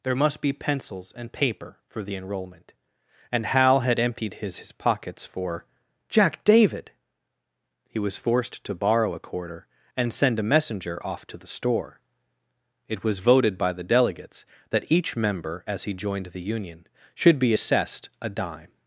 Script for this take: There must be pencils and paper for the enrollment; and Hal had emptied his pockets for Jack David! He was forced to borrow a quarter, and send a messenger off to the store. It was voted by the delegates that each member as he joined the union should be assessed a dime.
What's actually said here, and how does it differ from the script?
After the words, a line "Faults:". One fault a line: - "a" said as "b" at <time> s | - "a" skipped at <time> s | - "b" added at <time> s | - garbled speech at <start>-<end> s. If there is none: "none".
There must be pencils and paper for the enrollment; and Hal had emptied his his pockets for Jack David! He was forced to borrow a quarter, and send a messenger off to the store. It was voted by the delegates that each member as he joined the union should be assessed a dime.
Faults:
- "his" added at 4.6 s